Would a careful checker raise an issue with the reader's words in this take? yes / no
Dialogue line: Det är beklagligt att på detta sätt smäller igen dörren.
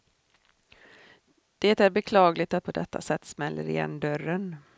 no